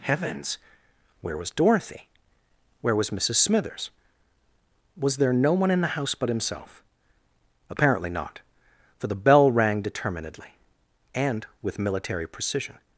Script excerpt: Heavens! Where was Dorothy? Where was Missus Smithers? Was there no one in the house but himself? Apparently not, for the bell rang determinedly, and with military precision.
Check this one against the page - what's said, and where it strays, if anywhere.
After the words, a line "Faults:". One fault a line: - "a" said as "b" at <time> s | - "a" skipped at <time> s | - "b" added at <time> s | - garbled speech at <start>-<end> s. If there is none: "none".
Heavens! Where was Dorothy? Where was Missus Smithers? Was there no one in the house but himself? Apparently not, for the bell rang determinedly, and with military precision.
Faults:
none